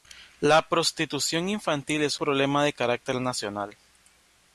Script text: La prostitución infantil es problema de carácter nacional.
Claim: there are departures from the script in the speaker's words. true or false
false